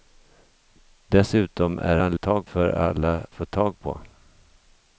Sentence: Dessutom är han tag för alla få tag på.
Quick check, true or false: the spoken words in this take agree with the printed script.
true